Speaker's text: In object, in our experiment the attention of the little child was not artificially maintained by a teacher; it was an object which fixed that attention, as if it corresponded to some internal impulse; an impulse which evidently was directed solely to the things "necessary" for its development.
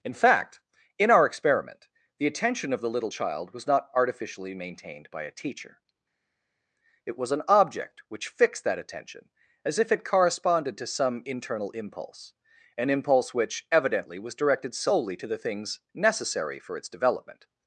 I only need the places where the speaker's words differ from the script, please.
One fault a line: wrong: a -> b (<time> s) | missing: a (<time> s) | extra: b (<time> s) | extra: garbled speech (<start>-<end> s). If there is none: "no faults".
wrong: object -> fact (0.1 s)